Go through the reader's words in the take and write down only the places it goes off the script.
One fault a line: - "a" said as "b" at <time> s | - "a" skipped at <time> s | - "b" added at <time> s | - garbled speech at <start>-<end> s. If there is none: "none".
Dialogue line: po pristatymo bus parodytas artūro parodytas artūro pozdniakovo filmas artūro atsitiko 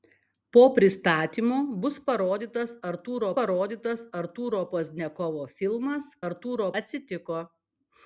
none